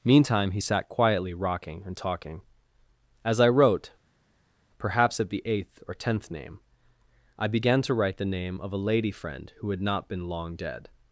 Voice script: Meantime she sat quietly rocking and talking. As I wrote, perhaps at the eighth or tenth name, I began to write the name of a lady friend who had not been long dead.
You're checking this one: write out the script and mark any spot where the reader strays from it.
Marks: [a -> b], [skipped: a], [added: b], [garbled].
Meantime [she -> he] sat quietly rocking and talking. As I wrote, perhaps at the eighth or tenth name, I began to write the name of a lady friend who had not been long dead.